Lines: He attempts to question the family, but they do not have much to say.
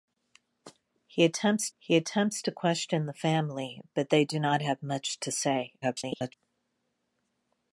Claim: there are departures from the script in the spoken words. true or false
true